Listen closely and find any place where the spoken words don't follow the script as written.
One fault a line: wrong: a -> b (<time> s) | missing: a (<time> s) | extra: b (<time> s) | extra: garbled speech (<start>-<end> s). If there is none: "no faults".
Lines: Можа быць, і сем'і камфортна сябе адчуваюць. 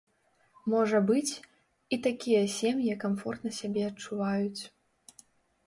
extra: такія (2.1 s)